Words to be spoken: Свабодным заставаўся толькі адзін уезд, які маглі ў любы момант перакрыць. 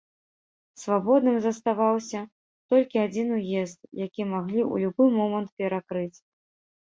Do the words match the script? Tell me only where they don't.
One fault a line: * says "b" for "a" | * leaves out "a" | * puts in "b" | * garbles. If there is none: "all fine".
all fine